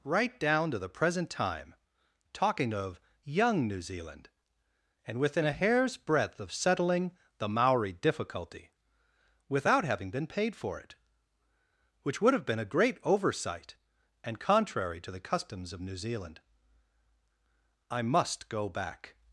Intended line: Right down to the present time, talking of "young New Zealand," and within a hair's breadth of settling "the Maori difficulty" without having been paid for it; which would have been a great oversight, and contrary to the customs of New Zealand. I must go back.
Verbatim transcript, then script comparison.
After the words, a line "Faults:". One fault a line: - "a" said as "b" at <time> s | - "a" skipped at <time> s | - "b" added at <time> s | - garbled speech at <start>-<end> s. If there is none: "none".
Right down to the present time, talking of "young New Zealand," and within a hair's breadth of settling "the Maori difficulty" without having been paid for it; which would have been a great oversight, and contrary to the customs of New Zealand. I must go back.
Faults:
none